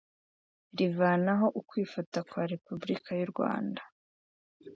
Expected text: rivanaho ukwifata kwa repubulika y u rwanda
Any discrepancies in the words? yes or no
no